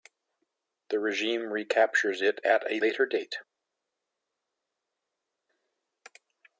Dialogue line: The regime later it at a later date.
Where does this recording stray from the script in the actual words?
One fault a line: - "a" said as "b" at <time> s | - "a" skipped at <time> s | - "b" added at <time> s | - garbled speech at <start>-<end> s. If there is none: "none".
- "later" said as "recaptures" at 1.5 s